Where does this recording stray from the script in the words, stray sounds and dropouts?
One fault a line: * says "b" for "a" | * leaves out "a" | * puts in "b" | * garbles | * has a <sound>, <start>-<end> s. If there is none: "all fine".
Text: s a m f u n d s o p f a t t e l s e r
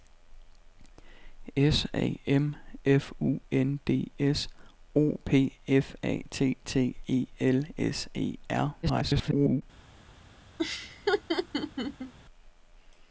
* garbles
* has a laugh, 10.6-12.1 s